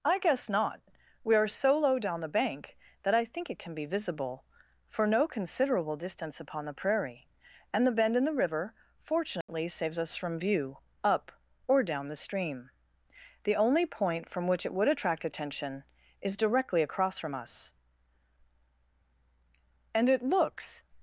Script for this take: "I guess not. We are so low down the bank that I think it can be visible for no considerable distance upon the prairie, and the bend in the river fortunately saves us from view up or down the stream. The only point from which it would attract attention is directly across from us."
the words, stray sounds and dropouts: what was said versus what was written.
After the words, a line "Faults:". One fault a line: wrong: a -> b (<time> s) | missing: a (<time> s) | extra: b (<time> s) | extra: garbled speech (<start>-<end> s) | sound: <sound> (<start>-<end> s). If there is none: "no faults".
"I guess not. We are so low down the bank that I think it can be visible for no considerable distance upon the prairie, and the bend in the river fortunately saves us from view up or down the stream. The only point from which it would attract attention is directly across from us." "And it looks
Faults:
sound: dropout (9.4-9.5 s)
extra: And it looks (19.9 s)